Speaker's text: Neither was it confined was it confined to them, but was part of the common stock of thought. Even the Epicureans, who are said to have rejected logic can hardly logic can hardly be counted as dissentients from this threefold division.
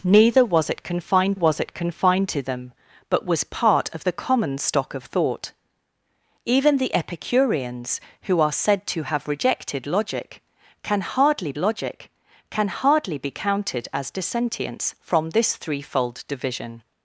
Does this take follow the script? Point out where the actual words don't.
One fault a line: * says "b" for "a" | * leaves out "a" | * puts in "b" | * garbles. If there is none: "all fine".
all fine